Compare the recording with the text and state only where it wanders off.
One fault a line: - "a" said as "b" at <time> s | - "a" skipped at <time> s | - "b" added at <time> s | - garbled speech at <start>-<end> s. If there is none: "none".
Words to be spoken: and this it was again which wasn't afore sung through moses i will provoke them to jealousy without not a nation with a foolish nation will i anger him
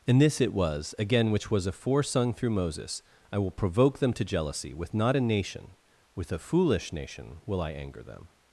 - "wasn't" said as "was" at 1.5 s
- "without" said as "with" at 4.7 s
- "him" said as "them" at 8.0 s